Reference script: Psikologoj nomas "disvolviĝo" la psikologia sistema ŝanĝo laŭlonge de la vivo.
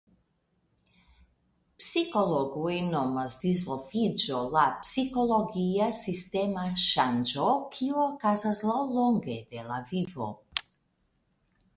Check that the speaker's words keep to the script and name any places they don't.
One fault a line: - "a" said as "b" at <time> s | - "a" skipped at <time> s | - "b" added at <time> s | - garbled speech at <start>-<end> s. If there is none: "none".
- "kiu okazas" added at 7.7 s